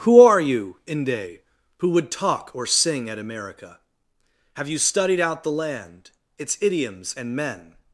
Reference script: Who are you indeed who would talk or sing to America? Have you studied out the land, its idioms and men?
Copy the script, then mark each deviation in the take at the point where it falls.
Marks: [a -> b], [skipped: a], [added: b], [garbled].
Who are you [indeed -> inde] who would talk or sing [to -> at] America? Have you studied out the land, its idioms and men?